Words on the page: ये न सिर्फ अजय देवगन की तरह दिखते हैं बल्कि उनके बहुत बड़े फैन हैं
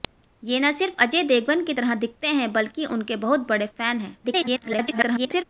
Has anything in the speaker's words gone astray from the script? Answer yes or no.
yes